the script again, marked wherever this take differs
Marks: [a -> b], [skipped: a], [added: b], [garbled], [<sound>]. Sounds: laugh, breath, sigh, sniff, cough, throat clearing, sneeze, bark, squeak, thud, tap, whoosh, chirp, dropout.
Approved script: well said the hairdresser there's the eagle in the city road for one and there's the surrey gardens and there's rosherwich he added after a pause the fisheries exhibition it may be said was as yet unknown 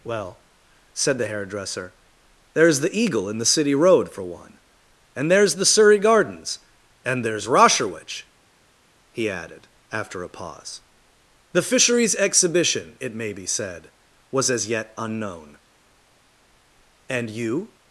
well said the hairdresser there's the eagle in the city road for one and there's the surrey gardens and there's rosherwich he added after a pause the fisheries exhibition it may be said was as yet unknown [added: and you]